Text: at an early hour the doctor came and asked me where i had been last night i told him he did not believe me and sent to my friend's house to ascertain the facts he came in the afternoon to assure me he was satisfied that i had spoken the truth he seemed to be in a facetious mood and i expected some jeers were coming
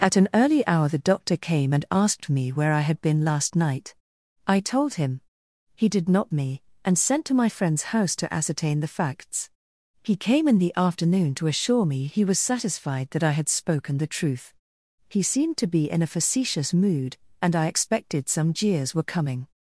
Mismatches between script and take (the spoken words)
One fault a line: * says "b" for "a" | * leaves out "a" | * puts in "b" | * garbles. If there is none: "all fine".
* leaves out "believe"